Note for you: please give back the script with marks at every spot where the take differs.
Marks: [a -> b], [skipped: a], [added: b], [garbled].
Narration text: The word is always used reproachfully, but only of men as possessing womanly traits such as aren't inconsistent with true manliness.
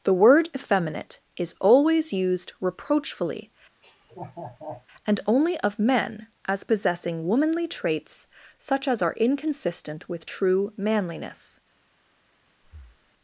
The word [added: effeminate] is always used reproachfully, [but -> and] only of men as possessing womanly traits such as [aren't -> are] inconsistent with true manliness.